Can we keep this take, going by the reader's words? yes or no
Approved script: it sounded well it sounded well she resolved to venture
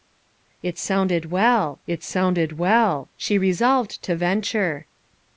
yes